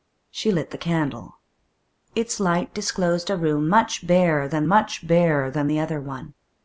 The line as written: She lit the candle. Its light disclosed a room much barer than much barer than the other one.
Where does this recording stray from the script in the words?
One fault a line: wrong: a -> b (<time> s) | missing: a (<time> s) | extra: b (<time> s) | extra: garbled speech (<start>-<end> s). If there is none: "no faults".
no faults